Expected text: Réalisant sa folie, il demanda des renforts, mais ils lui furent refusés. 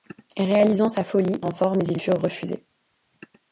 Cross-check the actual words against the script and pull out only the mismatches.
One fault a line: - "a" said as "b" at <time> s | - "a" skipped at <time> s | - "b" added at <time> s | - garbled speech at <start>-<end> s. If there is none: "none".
- "il demanda des" skipped at 1.4 s
- "lui" skipped at 2.0 s